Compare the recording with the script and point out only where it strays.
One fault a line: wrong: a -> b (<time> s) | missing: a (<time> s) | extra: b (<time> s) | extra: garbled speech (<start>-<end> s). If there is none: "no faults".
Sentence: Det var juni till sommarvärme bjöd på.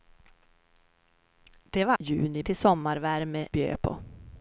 no faults